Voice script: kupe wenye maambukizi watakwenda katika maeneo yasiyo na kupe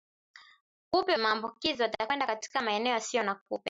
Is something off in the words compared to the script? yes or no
yes